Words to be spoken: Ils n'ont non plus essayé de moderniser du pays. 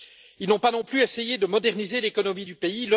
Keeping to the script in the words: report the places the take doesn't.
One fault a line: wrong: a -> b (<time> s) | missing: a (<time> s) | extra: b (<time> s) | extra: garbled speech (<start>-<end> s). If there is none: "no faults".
extra: pas (0.6 s)
extra: l'économie (2.0 s)